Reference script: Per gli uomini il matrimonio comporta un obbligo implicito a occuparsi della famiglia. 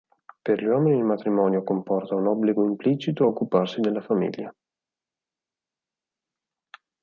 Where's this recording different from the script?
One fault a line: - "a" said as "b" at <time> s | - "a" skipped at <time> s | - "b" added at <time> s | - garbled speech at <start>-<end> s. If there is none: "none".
none